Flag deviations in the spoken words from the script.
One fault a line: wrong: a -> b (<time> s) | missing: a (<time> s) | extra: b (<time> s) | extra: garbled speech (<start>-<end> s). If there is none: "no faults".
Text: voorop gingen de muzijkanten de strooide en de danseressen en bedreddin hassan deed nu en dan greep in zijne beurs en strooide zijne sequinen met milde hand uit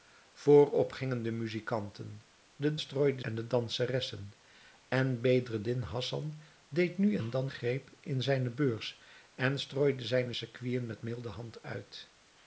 no faults